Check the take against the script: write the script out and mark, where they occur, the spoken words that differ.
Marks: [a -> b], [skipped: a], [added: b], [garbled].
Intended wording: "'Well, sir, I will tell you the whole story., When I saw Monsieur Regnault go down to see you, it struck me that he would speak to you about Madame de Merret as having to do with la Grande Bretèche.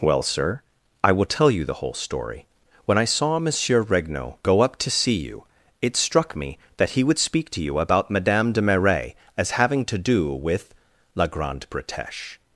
"'Well, sir, I will tell you the whole story., When I saw Monsieur Regnault go [down -> up] to see you, it struck me that he would speak to you about Madame de Merret as having to do with la Grande Bretèche.